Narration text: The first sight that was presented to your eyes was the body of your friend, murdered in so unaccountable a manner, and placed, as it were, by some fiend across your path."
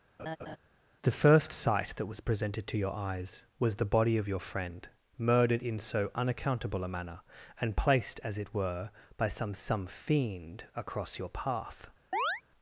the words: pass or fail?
fail